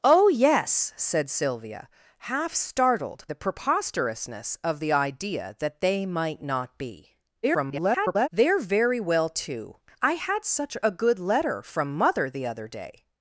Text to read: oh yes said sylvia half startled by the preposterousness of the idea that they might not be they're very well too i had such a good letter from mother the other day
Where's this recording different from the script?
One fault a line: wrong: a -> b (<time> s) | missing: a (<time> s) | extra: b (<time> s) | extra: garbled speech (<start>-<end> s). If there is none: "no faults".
missing: by (3.2 s)
extra: garbled speech (7.4-8.3 s)